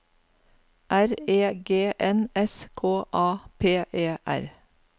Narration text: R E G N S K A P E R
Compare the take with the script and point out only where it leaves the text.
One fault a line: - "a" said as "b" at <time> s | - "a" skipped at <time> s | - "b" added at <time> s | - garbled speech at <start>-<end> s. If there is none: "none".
none